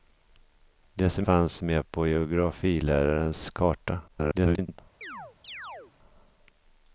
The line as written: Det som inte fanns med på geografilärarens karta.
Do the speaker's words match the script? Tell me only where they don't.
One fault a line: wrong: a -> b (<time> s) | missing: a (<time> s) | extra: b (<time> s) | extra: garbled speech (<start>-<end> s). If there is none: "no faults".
missing: inte (1.3 s)
extra: garbled speech (4.1-4.8 s)